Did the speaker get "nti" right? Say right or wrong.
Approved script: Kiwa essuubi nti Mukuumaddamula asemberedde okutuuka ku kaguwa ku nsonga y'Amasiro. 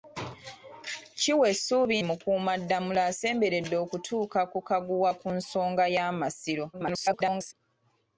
wrong